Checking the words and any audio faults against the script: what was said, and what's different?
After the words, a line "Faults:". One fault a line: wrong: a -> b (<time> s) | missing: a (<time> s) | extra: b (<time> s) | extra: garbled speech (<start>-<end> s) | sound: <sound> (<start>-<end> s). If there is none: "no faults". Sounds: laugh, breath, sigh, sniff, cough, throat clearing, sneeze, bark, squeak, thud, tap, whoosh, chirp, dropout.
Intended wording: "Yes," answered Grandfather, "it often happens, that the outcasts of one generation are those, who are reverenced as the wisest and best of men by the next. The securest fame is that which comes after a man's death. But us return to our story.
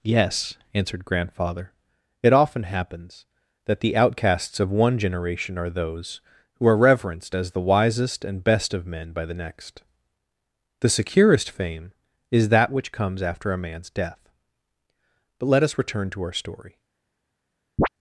"Yes," answered Grandfather, "it often happens, that the outcasts of one generation are those, who are reverenced as the wisest and best of men by the next. The securest fame is that which comes after a man's death. But let us return to our story.
Faults:
extra: let (15.5 s)
sound: chirp (17.8-17.9 s)